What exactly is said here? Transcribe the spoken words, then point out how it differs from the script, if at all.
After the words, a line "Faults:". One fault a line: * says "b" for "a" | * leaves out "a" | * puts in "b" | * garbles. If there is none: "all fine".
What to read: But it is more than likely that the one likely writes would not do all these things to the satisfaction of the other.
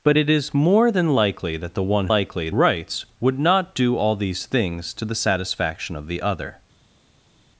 But it is more than likely that the one likely writes would not do all these things to the satisfaction of the other.
Faults:
all fine